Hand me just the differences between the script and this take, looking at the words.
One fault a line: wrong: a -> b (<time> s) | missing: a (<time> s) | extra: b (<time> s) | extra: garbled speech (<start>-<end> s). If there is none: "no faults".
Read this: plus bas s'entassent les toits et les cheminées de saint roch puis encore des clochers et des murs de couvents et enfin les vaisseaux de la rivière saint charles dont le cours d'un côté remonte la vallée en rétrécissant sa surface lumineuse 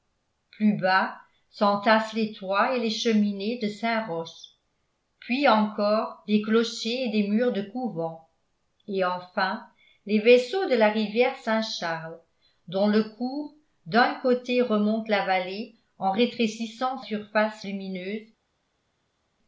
missing: sa (17.0 s)